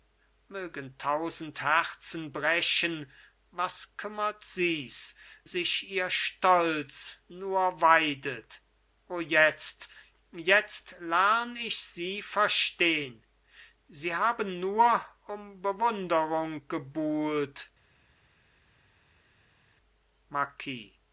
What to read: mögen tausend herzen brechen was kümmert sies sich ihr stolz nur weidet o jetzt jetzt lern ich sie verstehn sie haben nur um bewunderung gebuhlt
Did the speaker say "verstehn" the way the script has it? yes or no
yes